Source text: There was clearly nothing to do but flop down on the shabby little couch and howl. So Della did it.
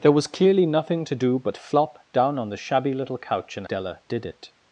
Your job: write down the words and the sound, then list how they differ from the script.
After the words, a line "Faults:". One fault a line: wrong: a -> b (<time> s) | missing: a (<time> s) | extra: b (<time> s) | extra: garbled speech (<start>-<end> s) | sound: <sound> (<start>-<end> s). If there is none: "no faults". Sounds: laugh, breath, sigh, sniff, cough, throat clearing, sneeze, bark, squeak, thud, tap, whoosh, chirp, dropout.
There was clearly nothing to do but flop down on the shabby little couch and Della did it.
Faults:
missing: howl So (3.7 s)